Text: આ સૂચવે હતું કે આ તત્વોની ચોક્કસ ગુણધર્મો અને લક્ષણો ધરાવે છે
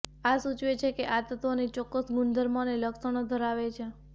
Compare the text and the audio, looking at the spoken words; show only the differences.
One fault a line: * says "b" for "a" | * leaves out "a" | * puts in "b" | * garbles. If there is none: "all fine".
* says "છે" for "હતું"